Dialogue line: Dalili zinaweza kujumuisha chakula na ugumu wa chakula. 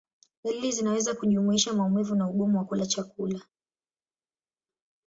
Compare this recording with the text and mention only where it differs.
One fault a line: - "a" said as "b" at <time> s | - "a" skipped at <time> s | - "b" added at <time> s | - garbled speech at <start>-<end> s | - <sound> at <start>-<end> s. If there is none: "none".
- "chakula" said as "maumivu" at 1.7 s
- "kula" added at 2.6 s